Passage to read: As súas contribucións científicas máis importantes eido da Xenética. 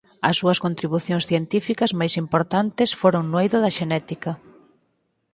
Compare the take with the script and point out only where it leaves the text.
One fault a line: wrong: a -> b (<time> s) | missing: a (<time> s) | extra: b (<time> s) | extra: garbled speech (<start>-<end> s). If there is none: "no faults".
extra: foron no (3.0 s)